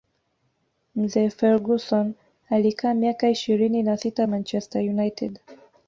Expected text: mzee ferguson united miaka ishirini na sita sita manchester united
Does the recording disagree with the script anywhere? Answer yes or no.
yes